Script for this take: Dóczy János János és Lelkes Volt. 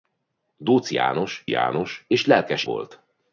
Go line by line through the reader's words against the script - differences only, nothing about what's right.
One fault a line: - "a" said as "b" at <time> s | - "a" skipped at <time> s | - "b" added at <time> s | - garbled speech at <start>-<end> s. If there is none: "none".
none